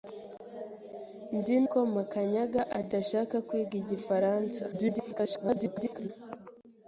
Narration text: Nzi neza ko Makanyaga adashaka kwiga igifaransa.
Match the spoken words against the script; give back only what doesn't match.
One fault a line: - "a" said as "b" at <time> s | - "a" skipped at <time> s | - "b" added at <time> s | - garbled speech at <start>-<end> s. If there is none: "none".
- "neza" skipped at 1.6 s
- garbled speech at 4.7-6.1 s